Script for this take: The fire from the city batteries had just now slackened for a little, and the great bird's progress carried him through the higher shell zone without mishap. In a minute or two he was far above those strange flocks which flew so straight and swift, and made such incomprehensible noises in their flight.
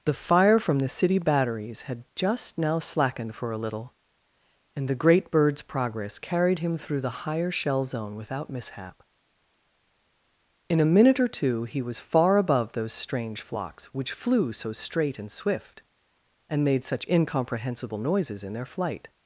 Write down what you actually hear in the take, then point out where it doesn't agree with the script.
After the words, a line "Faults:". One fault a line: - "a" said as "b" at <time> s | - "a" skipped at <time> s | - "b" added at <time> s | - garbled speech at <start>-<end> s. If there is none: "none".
The fire from the city batteries had just now slackened for a little, and the great bird's progress carried him through the higher shell zone without mishap. In a minute or two he was far above those strange flocks which flew so straight and swift, and made such incomprehensible noises in their flight.
Faults:
none